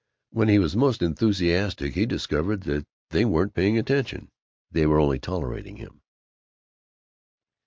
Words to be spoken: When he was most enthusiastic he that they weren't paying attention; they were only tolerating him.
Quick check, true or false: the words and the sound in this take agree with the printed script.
false